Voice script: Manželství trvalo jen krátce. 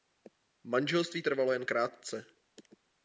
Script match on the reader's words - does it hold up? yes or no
yes